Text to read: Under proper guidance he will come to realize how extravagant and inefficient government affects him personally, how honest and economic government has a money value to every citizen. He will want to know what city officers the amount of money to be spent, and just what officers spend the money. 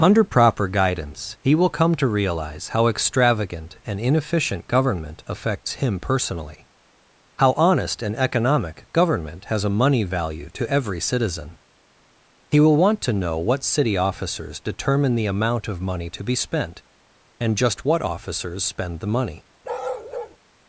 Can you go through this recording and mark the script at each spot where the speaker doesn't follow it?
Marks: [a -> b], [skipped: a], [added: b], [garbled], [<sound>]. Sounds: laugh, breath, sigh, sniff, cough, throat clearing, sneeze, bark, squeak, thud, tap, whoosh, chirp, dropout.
Under proper guidance he will come to realize how extravagant and inefficient government affects him personally, how honest and economic government has a money value to every citizen. He will want to know what city officers [added: determine] the amount of money to be spent, and just what officers spend the money. [bark]